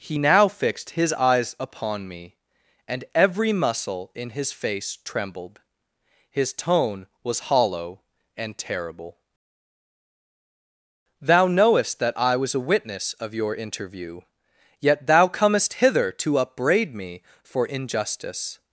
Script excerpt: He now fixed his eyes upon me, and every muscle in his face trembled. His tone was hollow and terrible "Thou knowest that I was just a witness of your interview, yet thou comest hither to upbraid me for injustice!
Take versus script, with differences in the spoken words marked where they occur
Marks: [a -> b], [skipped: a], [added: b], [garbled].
He now fixed his eyes upon me, and every muscle in his face trembled. His tone was hollow and terrible "Thou knowest that I was [skipped: just] a witness of your interview, yet thou comest hither to upbraid me for injustice!